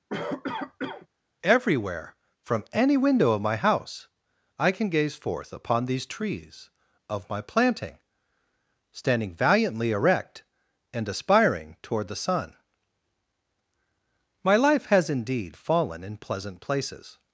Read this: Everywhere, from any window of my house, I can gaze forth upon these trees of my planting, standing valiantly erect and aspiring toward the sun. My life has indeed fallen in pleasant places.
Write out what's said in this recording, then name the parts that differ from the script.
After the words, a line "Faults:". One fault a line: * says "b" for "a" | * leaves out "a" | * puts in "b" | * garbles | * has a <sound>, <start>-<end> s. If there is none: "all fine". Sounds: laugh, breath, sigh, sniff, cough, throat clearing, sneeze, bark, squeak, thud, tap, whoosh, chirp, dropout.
Everywhere, from any window of my house, I can gaze forth upon these trees of my planting, standing valiantly erect and aspiring toward the sun. My life has indeed fallen in pleasant places.
Faults:
* has a cough, 0.1-1.1 s